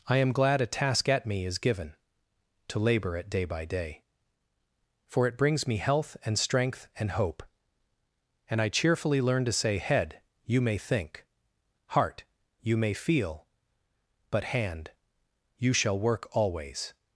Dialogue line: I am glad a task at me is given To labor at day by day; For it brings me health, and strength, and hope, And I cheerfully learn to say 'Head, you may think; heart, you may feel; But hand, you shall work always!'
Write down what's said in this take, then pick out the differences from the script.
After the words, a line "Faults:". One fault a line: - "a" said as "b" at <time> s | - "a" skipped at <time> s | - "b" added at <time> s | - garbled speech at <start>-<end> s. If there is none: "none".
I am glad a task at me is given To labor at day by day; For it brings me health, and strength, and hope, And I cheerfully learn to say 'Head, you may think; heart, you may feel; But hand, you shall work always!'
Faults:
none